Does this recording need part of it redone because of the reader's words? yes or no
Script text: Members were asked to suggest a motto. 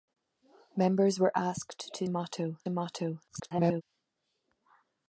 yes